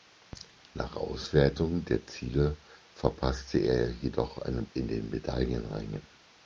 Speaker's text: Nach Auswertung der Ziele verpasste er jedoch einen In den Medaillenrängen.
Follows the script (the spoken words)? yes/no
yes